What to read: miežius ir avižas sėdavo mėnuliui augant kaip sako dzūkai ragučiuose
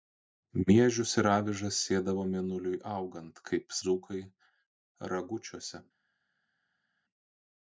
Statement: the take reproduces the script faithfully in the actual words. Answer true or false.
false